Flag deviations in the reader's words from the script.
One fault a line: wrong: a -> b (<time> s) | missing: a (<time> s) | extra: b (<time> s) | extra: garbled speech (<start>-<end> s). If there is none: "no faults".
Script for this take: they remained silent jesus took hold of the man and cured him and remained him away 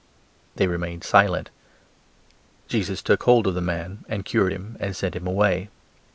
wrong: remained -> sent (4.9 s)